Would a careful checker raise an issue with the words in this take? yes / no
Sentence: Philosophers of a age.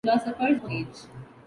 no